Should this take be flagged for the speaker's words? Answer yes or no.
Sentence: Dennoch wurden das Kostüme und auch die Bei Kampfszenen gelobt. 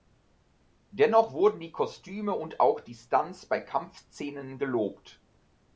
yes